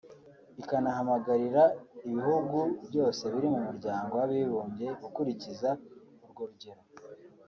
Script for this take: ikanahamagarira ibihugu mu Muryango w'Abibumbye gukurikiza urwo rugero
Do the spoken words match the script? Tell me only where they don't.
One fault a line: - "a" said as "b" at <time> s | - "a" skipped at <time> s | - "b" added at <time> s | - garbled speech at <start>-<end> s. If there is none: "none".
- "byose biri" added at 2.9 s